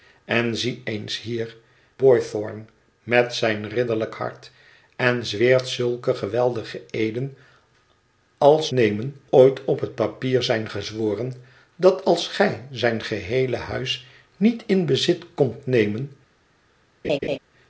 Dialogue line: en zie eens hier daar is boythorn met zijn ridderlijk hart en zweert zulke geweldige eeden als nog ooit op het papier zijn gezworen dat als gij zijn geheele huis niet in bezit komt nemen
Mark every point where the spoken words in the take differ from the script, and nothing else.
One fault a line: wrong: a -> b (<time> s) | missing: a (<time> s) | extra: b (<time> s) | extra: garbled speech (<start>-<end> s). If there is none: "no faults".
missing: daar is (1.6 s)
wrong: nog -> nemen (8.7 s)